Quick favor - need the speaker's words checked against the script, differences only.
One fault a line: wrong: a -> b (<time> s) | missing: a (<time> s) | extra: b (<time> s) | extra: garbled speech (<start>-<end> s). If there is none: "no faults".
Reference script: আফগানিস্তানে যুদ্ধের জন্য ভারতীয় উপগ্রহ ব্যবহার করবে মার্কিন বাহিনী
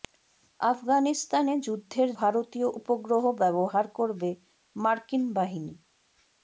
missing: জন্য (2.1 s)